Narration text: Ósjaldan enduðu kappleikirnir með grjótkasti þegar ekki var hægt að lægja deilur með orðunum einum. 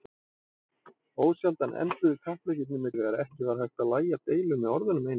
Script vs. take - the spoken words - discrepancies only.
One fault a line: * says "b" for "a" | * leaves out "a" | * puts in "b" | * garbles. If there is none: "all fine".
* leaves out "grjótkasti"